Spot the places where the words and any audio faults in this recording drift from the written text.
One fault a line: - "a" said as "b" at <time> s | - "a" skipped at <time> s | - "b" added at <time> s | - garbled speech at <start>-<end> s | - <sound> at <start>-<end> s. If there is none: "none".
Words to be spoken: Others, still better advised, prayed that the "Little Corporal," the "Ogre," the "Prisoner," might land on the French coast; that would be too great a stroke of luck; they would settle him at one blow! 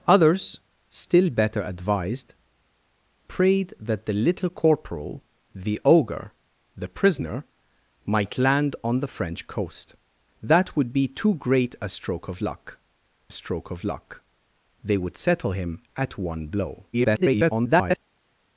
- "stroke of luck" added at 13.3 s
- garbled speech at 16.9-18.0 s